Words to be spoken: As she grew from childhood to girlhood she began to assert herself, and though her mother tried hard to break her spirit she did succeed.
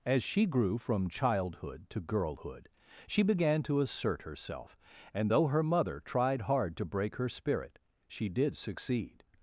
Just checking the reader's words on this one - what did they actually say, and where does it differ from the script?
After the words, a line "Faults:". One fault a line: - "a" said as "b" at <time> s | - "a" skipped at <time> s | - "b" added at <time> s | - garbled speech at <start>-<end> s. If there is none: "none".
As she grew from childhood to girlhood she began to assert herself, and though her mother tried hard to break her spirit she did succeed.
Faults:
none